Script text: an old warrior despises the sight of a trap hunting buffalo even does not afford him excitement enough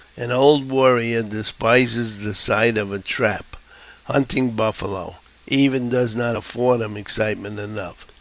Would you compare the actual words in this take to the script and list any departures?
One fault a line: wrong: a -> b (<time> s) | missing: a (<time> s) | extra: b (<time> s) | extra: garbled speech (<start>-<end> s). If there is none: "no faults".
no faults